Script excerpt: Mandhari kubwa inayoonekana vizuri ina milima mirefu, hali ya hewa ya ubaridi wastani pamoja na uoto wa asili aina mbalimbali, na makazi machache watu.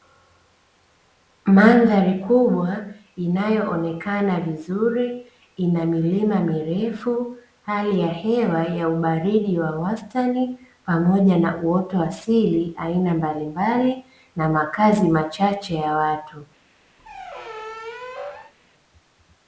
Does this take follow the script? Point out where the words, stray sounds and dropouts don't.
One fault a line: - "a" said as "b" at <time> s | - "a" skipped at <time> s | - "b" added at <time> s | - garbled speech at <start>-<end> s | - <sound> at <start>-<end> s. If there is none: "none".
- "wa" added at 9.6 s
- "ya" added at 15.7 s
- squeak at 17.0-18.5 s